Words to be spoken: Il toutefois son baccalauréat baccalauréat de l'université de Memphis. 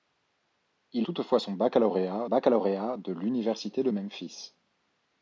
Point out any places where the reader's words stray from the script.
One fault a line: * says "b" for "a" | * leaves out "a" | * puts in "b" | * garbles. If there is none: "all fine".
all fine